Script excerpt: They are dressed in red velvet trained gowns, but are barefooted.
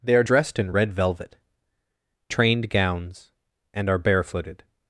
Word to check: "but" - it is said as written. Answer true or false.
false